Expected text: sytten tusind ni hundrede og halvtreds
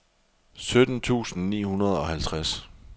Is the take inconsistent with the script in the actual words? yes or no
no